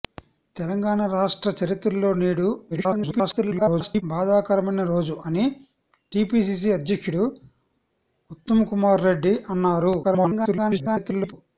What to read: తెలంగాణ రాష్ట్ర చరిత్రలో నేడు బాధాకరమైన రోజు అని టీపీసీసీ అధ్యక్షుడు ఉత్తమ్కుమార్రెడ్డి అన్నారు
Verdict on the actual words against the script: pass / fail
fail